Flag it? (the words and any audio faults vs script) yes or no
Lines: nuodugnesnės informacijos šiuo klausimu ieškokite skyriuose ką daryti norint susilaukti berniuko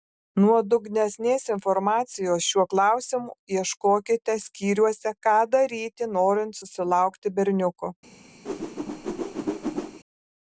yes